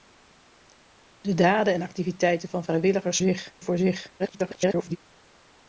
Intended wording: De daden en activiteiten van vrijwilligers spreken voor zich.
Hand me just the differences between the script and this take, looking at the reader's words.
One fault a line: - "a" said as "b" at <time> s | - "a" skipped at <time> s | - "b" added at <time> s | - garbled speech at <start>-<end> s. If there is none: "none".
- "spreken" said as "zich" at 3.2 s
- garbled speech at 4.2-5.0 s